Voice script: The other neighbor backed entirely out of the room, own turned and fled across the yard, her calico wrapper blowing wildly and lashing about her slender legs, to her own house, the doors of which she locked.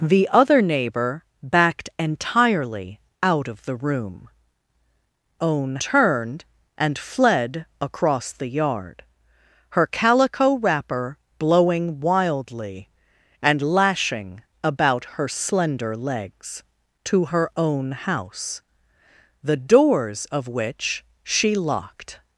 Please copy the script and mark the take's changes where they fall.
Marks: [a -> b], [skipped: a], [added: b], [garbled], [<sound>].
The other neighbor backed entirely out of the room, own turned and fled across the yard, her calico wrapper blowing wildly and lashing about her slender legs, to her own house, the doors of which she locked.